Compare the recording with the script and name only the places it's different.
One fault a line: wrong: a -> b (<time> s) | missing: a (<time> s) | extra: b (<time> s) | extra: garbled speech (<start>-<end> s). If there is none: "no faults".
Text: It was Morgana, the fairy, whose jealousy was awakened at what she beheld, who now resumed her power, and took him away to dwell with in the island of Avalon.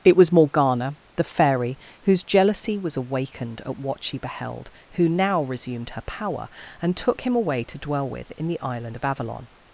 no faults